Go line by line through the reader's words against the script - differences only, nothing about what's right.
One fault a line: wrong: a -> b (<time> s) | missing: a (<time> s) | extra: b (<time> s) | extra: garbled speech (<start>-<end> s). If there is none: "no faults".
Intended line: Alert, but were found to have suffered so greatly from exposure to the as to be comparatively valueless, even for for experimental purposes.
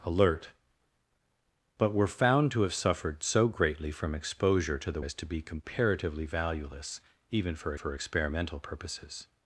no faults